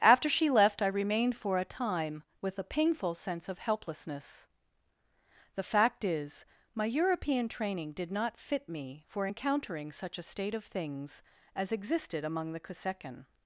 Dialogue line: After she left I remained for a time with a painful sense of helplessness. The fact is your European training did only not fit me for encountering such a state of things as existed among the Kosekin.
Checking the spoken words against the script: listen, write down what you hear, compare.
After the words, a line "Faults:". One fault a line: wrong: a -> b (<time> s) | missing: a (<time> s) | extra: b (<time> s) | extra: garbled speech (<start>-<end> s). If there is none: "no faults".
After she left I remained for a time with a painful sense of helplessness. The fact is my European training did not fit me for encountering such a state of things as existed among the Kosekin.
Faults:
wrong: your -> my (6.7 s)
missing: only (8.1 s)